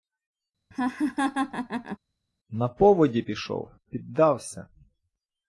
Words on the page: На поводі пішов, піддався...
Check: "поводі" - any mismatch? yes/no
no